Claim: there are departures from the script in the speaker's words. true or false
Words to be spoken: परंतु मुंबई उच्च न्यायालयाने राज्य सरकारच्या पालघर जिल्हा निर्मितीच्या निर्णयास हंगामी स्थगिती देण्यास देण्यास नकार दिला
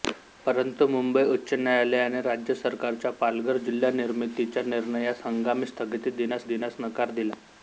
false